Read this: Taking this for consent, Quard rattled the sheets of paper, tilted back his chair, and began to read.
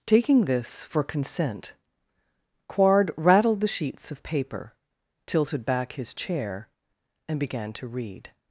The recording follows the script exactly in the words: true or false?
true